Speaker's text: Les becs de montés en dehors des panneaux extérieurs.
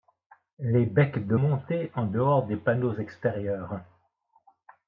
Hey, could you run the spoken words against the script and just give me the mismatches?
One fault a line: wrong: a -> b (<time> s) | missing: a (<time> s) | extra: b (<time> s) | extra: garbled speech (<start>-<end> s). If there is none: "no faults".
no faults